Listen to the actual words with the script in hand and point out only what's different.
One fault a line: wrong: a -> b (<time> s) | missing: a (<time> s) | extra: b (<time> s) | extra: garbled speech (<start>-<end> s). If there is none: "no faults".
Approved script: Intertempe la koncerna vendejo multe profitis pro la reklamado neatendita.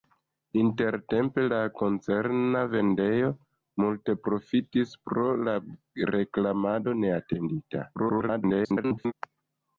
extra: garbled speech (7.9-9.1 s)